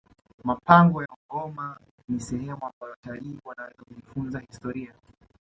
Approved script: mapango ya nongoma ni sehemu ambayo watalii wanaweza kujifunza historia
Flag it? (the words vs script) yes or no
yes